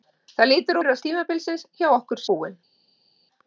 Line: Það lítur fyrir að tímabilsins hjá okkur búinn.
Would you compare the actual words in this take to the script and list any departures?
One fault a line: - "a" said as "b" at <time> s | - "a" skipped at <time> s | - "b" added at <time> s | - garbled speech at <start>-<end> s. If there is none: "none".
none